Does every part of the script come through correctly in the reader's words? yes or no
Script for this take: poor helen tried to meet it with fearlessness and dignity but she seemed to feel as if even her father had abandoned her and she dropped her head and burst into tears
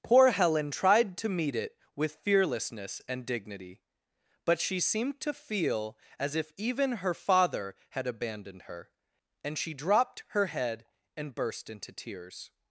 yes